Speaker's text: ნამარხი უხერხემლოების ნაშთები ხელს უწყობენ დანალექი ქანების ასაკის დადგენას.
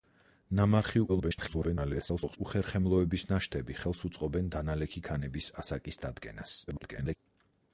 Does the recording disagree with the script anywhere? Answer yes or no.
yes